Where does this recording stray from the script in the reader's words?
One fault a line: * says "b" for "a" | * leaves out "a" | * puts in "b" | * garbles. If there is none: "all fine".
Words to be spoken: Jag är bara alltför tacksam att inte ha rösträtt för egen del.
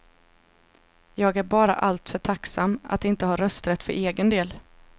all fine